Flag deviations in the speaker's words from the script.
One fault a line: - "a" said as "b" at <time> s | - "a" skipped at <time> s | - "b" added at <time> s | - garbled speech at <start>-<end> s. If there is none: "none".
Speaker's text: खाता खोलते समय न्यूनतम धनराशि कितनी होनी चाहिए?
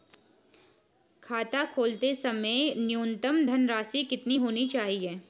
none